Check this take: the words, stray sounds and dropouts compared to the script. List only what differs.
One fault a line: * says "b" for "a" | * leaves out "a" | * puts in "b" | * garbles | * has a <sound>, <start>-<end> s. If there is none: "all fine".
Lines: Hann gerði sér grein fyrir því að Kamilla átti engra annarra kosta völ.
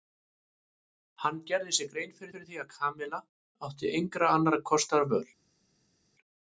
* puts in "fyrir"